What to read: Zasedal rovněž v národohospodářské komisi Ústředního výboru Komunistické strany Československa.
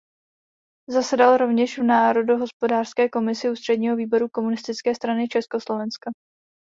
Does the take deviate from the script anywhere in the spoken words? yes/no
no